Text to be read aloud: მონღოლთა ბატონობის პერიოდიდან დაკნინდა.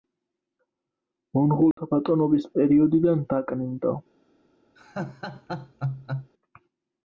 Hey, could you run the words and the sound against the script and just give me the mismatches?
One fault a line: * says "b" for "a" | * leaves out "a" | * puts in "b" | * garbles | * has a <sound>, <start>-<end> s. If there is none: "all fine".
* has a dropout, 1.7-1.8 s
* has a laugh, 4.8-6.3 s